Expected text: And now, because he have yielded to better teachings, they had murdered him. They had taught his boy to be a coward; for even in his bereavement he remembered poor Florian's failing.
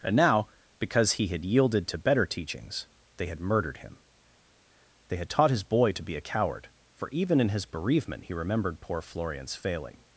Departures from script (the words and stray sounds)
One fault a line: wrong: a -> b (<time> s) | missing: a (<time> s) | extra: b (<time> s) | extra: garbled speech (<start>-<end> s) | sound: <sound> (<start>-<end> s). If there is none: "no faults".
wrong: have -> had (1.3 s)